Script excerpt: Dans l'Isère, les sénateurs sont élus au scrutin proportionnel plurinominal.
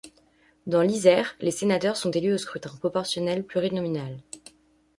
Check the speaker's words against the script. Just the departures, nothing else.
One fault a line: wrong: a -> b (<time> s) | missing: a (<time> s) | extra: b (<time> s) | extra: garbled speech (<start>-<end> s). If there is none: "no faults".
no faults